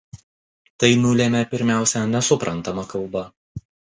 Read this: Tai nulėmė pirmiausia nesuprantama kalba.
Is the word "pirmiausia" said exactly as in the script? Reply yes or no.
yes